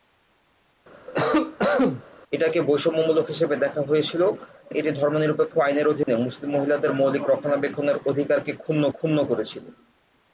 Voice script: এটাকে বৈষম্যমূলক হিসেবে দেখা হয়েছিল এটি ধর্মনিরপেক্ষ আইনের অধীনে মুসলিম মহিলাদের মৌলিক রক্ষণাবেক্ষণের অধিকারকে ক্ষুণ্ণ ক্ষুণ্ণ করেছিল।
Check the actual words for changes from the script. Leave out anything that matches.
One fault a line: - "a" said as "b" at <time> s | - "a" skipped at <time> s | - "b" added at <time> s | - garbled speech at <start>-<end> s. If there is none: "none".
none